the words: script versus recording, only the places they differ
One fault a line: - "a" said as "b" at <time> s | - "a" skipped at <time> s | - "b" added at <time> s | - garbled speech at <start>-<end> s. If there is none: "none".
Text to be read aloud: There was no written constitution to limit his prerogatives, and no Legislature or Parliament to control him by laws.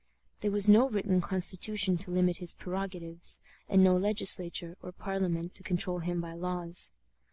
none